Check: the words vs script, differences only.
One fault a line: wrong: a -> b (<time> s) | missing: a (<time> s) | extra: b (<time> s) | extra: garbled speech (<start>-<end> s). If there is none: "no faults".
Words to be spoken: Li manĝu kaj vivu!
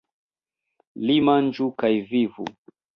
no faults